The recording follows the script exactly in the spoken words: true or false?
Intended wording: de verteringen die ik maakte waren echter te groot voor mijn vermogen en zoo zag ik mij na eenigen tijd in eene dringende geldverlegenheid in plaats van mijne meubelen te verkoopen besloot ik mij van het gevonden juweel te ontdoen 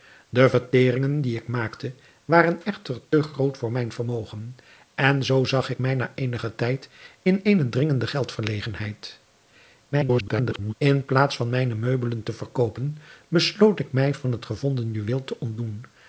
false